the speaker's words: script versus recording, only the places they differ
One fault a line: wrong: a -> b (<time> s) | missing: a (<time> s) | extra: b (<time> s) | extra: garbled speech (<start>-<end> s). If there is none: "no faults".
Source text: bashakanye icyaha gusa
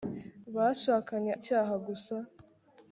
no faults